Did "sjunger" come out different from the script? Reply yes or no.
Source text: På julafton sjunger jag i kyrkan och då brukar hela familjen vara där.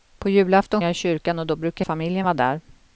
yes